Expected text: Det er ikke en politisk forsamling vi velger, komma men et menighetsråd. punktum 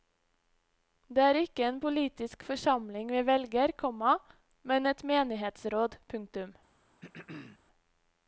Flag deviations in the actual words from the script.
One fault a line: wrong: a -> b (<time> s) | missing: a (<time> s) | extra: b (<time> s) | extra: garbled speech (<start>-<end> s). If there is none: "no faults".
no faults